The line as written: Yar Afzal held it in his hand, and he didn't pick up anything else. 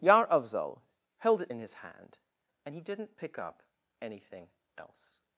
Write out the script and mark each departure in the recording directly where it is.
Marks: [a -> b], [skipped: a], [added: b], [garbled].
Yar Afzal held it in his hand, and he didn't pick up anything else.